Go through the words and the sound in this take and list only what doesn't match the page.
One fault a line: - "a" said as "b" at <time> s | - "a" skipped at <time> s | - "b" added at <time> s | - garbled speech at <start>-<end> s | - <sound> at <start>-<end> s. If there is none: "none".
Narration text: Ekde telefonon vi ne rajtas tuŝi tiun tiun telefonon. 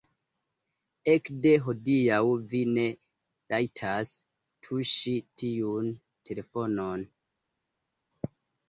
- "telefonon" said as "hodiaŭ" at 1.6 s
- "tiun" skipped at 5.9 s